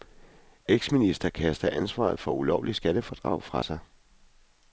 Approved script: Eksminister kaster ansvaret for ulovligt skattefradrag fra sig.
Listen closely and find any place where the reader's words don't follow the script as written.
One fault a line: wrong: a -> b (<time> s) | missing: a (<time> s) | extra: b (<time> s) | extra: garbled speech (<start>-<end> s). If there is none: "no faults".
no faults